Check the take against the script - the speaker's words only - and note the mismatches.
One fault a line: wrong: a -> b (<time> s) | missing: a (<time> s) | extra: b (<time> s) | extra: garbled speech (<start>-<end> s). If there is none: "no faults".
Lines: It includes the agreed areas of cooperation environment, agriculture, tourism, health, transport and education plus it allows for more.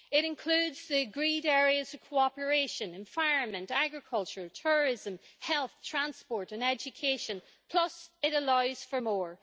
no faults